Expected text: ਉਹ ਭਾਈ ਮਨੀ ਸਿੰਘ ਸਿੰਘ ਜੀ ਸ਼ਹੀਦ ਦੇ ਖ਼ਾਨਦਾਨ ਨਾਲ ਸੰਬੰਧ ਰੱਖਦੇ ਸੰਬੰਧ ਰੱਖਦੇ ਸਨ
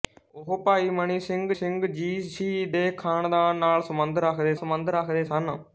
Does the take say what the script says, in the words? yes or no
yes